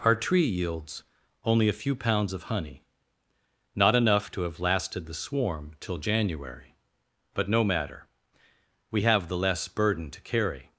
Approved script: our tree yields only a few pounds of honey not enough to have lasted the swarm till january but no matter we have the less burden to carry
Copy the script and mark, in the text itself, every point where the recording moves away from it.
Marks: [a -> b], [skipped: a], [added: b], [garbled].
our tree yields only a few pounds of honey not enough to have lasted the swarm till january but no matter we have the less burden to carry